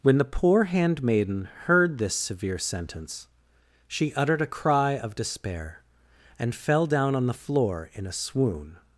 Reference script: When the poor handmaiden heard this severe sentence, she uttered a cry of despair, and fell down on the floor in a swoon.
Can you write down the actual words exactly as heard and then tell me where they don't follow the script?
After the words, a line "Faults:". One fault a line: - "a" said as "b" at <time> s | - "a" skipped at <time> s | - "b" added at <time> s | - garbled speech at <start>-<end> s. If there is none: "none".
When the poor handmaiden heard this severe sentence, she uttered a cry of despair, and fell down on the floor in a swoon.
Faults:
none